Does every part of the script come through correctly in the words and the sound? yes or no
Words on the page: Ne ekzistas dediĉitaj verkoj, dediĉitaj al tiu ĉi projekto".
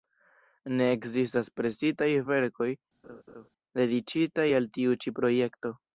no